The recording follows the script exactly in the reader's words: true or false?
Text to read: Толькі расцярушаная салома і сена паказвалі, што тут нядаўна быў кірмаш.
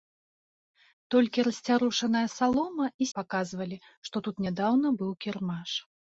false